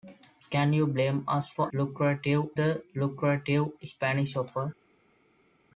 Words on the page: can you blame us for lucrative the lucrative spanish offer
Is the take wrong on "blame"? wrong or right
right